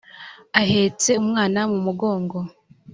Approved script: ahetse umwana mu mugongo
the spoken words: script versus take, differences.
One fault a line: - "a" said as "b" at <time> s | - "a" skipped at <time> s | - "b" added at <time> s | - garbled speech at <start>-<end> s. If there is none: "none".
none